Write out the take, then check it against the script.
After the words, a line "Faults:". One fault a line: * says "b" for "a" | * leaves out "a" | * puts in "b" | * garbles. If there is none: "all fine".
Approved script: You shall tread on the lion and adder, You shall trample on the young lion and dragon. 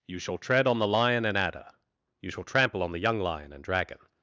You shall tread on the lion and adder, You shall trample on the young lion and dragon.
Faults:
all fine